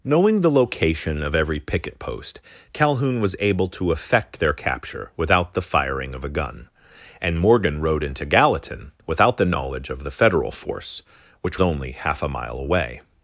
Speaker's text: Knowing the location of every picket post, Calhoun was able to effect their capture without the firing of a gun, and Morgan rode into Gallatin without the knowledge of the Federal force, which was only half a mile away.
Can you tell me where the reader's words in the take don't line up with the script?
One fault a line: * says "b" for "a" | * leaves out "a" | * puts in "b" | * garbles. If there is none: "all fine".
* leaves out "was"